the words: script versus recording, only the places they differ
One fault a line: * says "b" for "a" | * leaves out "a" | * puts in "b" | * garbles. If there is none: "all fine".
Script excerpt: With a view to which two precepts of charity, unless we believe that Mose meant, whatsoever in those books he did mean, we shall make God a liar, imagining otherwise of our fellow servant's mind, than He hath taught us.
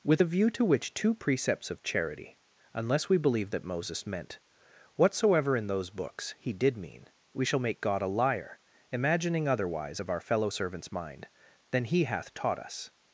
* says "Moses" for "Mose"